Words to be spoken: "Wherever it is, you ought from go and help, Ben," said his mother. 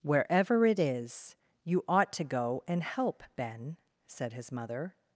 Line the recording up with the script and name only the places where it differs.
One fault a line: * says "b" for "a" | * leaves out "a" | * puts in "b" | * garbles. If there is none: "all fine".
* says "to" for "from"